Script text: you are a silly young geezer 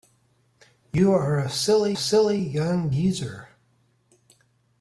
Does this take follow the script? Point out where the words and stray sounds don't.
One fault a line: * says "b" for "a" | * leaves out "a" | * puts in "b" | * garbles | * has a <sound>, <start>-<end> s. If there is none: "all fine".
* puts in "silly"